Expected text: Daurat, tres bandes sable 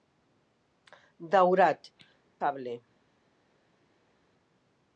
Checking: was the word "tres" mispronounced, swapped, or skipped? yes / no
yes